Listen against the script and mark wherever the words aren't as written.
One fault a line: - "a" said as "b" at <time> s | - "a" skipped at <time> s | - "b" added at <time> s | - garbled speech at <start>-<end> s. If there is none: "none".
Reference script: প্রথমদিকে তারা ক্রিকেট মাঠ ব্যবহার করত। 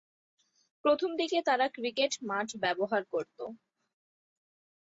none